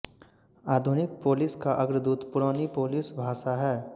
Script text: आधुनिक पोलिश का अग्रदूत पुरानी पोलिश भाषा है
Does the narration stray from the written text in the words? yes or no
no